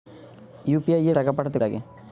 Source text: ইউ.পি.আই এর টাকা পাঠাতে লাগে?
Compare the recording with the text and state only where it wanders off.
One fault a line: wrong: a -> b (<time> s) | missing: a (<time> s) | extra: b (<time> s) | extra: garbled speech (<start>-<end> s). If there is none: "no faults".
no faults